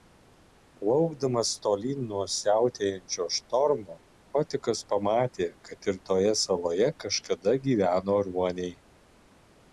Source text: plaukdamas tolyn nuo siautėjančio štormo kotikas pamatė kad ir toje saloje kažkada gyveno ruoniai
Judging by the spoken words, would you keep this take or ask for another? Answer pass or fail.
pass